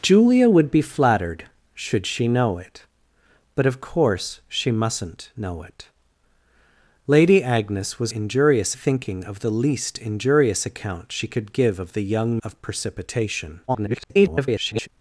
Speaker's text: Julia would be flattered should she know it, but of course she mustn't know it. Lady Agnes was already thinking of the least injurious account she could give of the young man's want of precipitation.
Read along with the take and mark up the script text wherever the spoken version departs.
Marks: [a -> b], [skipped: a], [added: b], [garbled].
Julia would be flattered should she know it, but of course she mustn't know it. Lady Agnes was [already -> injurious] thinking of the least injurious account she could give of the young [skipped: man's want] of precipitation. [garbled]